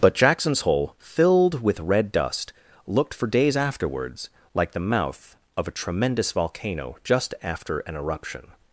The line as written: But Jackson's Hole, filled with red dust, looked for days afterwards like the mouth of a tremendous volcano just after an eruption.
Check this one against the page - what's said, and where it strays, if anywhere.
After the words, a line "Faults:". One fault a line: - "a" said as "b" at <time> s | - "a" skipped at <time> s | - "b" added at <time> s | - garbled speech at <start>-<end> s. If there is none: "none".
But Jackson's Hole, filled with red dust, looked for days afterwards like the mouth of a tremendous volcano just after an eruption.
Faults:
none